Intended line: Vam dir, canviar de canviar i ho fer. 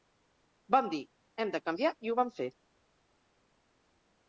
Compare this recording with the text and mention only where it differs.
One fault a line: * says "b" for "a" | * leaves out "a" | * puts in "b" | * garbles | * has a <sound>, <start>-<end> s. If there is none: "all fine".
* says "hem" for "canviar"
* puts in "vam"